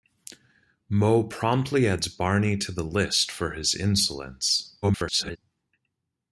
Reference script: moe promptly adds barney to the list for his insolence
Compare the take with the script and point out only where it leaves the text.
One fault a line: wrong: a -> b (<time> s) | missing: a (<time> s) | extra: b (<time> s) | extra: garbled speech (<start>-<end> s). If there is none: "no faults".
extra: garbled speech (4.8-5.4 s)